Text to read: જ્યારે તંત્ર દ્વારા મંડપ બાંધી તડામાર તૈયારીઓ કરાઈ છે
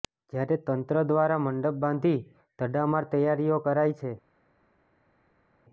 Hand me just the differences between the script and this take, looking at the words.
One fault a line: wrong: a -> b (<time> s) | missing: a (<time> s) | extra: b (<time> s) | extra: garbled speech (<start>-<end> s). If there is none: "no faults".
no faults